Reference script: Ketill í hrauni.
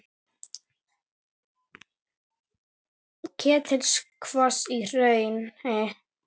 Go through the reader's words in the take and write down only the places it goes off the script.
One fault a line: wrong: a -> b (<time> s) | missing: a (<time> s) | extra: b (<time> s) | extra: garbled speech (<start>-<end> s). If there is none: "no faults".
extra: kvos (4.3 s)